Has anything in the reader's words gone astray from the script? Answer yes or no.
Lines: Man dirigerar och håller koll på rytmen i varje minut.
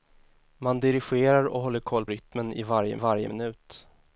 yes